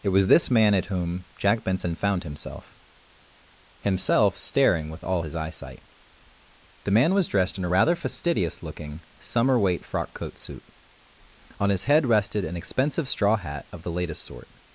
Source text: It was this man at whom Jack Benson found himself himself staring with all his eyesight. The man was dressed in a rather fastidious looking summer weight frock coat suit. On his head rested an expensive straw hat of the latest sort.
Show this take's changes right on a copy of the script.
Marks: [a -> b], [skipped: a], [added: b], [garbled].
It was this man at whom Jack Benson found himself himself staring with all his eyesight. The man was dressed in a rather fastidious looking summer weight frock coat suit. On his head rested an expensive straw hat of the latest sort.